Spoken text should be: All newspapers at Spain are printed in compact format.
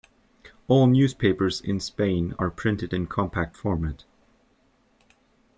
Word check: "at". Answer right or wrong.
wrong